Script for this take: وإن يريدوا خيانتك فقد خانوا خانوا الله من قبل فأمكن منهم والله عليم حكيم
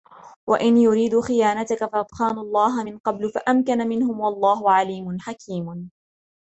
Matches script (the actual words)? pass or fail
fail